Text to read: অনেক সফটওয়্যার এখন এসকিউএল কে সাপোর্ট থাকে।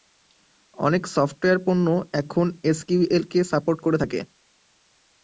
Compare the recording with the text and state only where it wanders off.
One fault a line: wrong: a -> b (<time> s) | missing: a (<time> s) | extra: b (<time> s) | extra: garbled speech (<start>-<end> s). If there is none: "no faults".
extra: পণ্য (1.6 s)
extra: করে (3.8 s)